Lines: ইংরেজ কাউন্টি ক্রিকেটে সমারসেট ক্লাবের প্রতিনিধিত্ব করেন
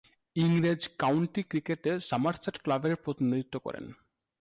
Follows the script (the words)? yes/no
yes